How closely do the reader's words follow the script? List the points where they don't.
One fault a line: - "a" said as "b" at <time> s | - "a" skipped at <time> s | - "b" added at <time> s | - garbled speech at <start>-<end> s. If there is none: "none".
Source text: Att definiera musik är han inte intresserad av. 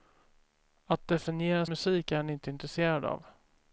none